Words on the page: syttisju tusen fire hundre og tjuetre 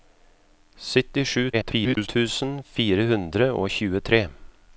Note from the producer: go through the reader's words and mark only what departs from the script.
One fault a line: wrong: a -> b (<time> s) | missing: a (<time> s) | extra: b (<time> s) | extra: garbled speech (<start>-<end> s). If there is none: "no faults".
extra: garbled speech (1.5-2.1 s)